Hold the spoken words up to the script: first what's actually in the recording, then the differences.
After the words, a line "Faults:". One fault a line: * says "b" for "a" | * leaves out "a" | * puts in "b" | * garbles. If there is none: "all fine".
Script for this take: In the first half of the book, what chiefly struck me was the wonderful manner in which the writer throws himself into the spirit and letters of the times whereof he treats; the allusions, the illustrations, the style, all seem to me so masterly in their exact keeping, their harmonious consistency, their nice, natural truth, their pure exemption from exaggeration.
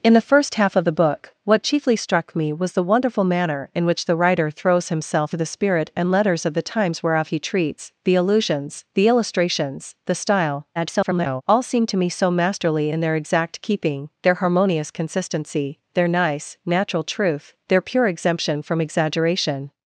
In the first half of the book, what chiefly struck me was the wonderful manner in which the writer throws himself the spirit and letters of the times whereof he treats; the allusions, the illustrations, the style, [garbled] all seem to me so masterly in their exact keeping, their harmonious consistency, their nice, natural truth, their pure exemption from exaggeration.
Faults:
* leaves out "into"
* garbles